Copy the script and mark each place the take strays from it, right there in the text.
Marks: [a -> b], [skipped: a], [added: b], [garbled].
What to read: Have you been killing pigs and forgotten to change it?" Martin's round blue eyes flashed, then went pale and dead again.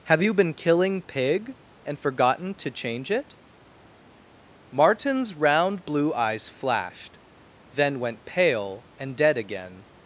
Have you been killing [pigs -> pig] and forgotten to change it?" Martin's round blue eyes flashed, then went pale and dead again.